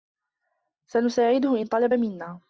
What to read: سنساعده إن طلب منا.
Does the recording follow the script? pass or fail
pass